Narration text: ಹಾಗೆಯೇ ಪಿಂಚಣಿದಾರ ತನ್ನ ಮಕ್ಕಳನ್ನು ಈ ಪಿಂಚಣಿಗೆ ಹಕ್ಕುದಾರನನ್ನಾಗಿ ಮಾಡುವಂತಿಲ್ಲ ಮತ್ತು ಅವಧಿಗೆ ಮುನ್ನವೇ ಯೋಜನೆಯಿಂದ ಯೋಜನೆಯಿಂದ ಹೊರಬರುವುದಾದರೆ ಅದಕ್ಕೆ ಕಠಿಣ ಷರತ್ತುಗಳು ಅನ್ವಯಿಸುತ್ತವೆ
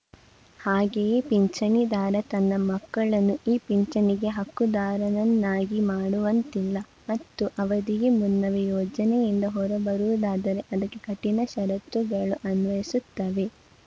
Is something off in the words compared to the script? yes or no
yes